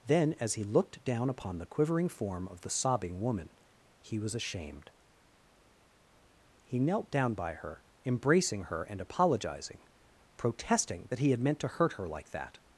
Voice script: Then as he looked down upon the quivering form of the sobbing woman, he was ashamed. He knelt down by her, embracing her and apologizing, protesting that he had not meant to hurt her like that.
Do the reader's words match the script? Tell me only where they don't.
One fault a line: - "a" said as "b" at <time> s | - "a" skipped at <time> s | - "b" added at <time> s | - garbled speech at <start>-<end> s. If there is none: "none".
- "not" skipped at 11.4 s